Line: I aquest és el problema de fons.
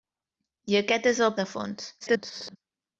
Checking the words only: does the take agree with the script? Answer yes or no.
no